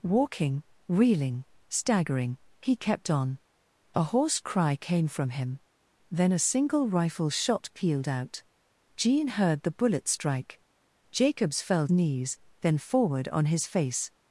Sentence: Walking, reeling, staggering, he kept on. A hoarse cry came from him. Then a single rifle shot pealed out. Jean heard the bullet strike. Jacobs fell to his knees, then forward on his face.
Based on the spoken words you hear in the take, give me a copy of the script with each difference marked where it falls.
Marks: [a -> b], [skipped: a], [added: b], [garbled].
Walking, reeling, staggering, he kept on. A hoarse cry came from him. Then a single rifle shot pealed out. Jean heard the bullet strike. Jacobs fell [skipped: to his] knees, then forward on his face.